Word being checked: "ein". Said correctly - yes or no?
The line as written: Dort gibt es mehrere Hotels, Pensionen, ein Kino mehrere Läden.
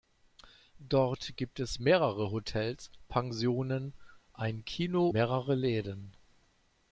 yes